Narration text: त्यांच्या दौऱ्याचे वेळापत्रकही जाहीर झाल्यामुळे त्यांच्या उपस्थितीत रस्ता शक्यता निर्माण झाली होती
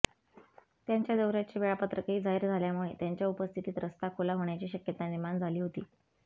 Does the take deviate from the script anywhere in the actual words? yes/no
yes